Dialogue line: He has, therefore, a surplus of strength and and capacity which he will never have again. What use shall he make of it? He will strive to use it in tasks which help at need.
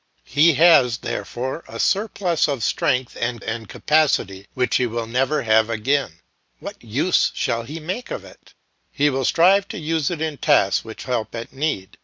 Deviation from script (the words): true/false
false